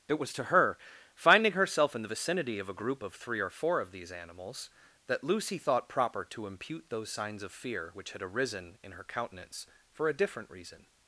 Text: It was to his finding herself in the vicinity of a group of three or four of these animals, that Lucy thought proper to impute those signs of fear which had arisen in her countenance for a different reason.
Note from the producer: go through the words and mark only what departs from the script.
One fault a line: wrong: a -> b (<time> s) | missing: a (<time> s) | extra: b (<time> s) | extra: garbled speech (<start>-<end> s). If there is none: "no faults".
wrong: his -> her (0.5 s)